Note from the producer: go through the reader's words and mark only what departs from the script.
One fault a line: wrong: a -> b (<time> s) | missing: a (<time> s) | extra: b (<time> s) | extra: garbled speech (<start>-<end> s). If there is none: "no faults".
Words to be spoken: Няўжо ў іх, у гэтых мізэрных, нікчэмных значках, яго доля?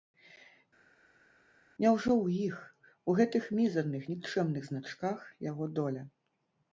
no faults